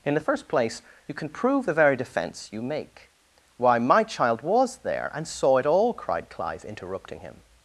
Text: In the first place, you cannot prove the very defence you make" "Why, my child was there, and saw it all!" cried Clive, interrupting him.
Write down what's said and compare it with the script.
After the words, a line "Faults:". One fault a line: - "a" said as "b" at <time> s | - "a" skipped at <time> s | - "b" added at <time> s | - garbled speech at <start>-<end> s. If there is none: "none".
In the first place, you can prove the very defence you make" "Why, my child was there, and saw it all!" cried Clive, interrupting him.
Faults:
- "cannot" said as "can" at 1.1 s